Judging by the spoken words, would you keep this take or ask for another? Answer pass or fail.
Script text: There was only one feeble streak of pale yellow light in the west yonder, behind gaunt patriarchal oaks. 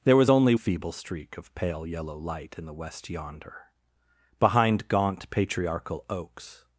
fail